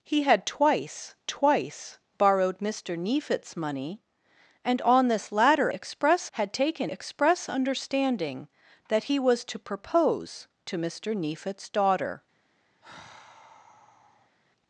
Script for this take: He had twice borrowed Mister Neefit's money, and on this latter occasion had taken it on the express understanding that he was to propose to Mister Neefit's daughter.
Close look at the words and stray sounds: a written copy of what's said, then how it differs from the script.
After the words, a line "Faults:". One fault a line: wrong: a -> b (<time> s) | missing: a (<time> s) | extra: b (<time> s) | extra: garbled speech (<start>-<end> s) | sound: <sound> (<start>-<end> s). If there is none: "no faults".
He had twice twice borrowed Mister Neefit's money, and on this latter express had taken express understanding that he was to propose to Mister Neefit's daughter.
Faults:
extra: twice (1.3 s)
wrong: occasion -> express (5.7 s)
missing: it on the (6.9 s)
sound: sigh (12.8-14.4 s)